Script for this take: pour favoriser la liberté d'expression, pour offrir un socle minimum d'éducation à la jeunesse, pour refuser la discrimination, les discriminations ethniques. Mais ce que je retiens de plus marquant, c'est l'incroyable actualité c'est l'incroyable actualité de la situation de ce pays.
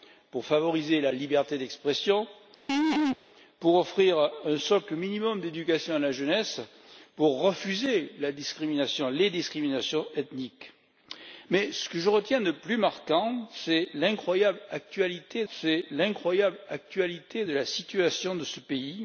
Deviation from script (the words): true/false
false